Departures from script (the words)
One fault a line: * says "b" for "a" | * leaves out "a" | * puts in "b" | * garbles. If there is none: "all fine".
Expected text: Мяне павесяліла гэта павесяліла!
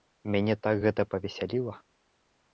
* says "так" for "павесяліла"